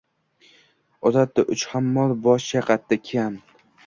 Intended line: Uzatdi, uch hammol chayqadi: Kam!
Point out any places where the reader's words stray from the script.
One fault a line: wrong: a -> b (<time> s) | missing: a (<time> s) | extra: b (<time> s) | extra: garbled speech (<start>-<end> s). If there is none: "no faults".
extra: bosh (2.2 s)